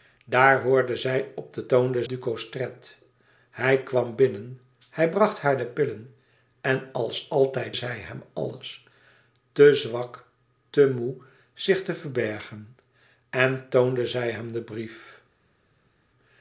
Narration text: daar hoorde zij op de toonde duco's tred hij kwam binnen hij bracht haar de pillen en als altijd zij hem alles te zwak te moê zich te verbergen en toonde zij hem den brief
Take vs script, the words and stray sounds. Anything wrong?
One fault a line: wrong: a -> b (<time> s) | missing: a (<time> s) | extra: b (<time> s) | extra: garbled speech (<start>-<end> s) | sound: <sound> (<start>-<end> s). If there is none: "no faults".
no faults